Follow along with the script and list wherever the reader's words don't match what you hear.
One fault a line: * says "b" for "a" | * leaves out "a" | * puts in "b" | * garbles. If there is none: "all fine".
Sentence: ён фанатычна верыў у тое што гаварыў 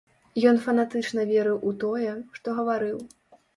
all fine